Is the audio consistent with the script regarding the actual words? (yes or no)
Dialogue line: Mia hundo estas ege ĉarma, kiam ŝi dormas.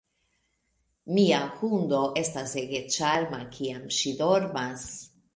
yes